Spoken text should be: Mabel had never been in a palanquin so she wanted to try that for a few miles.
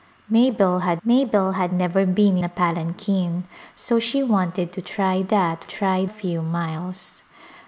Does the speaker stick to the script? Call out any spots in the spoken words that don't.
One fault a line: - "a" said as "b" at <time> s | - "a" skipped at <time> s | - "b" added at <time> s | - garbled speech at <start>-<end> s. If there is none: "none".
- "mabel had" added at 1.0 s
- "in" skipped at 2.4 s
- "for" said as "try" at 5.6 s